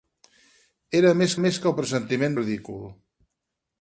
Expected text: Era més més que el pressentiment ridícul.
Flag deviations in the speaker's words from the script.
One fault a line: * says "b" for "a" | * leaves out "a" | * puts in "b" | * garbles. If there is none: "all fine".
all fine